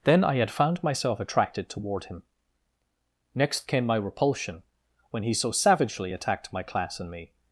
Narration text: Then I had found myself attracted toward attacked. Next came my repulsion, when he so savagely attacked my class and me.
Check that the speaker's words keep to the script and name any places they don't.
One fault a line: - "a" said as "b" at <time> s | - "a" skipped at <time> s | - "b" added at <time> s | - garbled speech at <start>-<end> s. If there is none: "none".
- "attacked" said as "him" at 2.0 s